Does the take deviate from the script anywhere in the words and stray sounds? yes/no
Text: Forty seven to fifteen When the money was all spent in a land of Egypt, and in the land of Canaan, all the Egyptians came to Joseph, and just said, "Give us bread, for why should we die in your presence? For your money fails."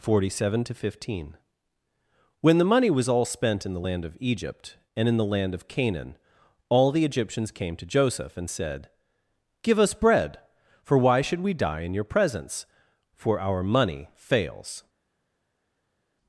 yes